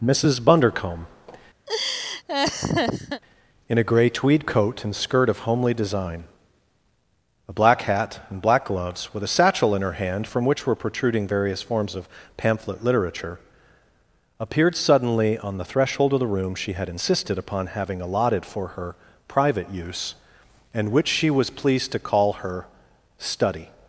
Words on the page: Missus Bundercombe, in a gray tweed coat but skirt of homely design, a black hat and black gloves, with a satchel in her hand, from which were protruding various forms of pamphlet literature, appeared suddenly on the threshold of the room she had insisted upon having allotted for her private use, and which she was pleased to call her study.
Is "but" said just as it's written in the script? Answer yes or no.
no